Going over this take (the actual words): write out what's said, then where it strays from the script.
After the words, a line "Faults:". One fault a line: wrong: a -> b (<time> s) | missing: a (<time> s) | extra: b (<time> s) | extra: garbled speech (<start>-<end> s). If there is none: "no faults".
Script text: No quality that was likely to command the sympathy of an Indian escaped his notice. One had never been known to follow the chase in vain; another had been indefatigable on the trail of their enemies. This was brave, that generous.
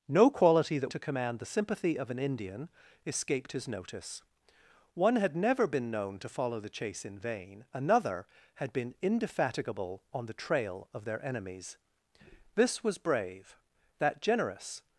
No quality that to command the sympathy of an Indian escaped his notice. One had never been known to follow the chase in vain; another had been indefatigable on the trail of their enemies. This was brave, that generous.
Faults:
missing: was likely (0.9 s)